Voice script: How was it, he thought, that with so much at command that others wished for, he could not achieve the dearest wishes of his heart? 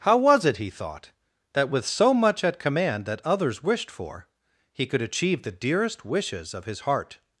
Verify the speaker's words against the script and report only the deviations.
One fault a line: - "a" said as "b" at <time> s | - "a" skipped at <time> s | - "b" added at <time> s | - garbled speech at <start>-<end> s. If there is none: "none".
- "not" skipped at 5.0 s